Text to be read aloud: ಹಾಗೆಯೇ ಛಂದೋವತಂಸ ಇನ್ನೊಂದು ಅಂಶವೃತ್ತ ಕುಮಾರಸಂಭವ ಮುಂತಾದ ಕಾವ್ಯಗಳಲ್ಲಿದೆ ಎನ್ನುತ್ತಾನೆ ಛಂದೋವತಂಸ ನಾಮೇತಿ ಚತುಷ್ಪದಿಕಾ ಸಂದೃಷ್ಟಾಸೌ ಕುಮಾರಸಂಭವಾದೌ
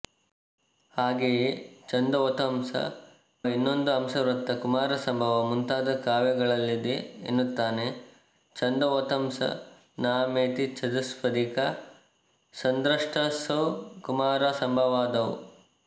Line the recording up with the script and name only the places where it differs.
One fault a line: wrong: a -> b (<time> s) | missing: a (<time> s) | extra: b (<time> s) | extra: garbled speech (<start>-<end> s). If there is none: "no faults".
no faults